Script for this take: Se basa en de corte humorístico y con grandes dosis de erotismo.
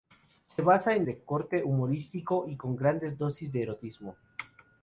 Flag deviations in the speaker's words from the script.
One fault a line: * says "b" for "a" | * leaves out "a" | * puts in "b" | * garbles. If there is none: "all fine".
all fine